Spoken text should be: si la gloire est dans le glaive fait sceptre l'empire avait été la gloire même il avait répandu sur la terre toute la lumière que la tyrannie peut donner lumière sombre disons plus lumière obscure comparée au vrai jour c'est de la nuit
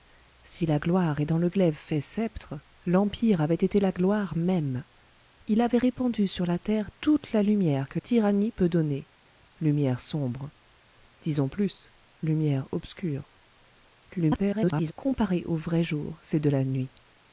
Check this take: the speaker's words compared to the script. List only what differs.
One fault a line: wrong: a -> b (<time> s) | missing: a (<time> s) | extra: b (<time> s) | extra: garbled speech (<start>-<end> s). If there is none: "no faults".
missing: la (8.0 s)
extra: garbled speech (14.1-14.9 s)